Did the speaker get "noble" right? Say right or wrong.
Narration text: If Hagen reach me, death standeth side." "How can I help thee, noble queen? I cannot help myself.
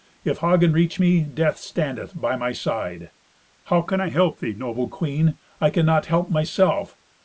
right